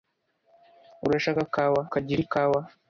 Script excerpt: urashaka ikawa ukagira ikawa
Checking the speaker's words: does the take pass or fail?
pass